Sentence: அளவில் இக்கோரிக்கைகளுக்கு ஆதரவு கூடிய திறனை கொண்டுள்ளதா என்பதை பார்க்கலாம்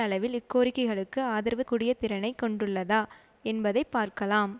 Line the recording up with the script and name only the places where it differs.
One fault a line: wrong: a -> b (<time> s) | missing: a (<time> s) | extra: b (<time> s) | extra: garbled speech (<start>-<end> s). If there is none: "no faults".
no faults